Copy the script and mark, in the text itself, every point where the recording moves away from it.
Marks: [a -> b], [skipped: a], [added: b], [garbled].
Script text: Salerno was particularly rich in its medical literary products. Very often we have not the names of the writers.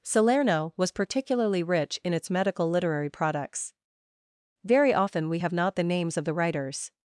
Salerno was particularly rich in its medical literary products. Very often we have not the names of the writers.